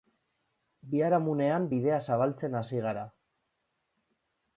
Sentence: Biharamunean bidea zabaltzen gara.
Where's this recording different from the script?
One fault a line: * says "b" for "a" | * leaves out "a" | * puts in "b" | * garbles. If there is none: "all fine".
* puts in "hasi"